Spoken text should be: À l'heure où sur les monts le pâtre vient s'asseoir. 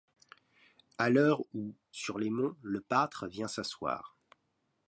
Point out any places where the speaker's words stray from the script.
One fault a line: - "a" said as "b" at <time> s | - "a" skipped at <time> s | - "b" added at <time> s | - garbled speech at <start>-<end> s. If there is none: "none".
none